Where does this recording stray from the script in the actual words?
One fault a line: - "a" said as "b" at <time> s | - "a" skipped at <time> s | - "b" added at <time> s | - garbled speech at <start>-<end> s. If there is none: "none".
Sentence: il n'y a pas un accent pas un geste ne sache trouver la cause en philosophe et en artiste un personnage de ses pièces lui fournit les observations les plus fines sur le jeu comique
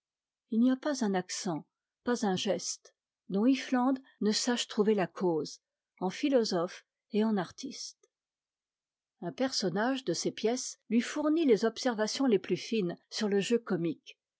- "dont iffland" added at 3.3 s